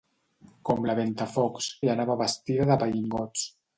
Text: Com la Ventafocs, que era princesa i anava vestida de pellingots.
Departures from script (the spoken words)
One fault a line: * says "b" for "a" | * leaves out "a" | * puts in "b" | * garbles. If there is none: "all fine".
* leaves out "que era princesa"